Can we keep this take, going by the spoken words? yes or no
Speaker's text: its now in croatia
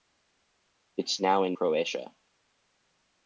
yes